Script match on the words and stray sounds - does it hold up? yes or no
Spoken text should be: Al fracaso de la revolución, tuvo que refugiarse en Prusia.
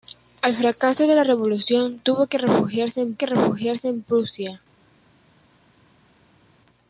no